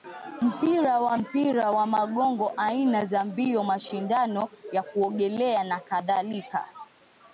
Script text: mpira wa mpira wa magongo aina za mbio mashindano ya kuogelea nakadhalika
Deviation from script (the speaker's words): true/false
false